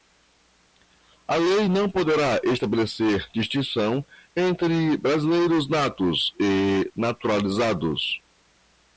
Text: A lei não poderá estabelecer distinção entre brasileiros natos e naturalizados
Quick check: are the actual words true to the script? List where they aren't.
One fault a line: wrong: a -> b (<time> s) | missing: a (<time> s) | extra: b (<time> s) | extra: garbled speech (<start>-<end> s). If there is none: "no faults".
no faults